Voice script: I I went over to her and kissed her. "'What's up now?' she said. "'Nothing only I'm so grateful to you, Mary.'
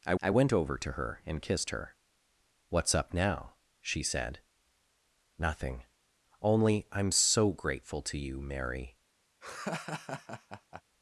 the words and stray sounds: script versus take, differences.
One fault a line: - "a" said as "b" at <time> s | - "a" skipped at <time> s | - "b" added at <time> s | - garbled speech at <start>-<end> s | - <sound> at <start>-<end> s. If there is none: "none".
- laugh at 9.4-10.8 s